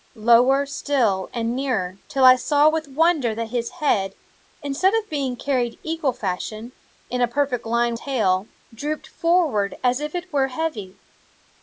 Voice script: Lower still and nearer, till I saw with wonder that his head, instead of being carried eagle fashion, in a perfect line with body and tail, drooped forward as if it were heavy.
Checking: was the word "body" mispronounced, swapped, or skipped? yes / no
yes